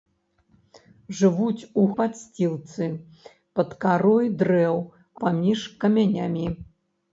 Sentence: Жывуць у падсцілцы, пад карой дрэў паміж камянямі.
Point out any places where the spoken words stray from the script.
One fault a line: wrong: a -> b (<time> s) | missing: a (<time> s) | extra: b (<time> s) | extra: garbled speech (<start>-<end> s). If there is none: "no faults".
no faults